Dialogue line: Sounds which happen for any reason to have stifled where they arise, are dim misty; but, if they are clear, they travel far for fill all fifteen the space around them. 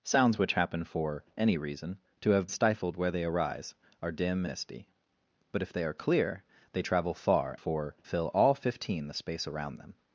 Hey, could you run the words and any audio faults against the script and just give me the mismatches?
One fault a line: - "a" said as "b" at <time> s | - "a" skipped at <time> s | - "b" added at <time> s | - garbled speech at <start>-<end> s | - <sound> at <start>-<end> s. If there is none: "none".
none